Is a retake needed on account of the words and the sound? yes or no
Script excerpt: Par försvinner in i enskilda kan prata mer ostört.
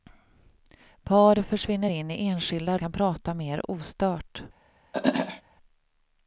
yes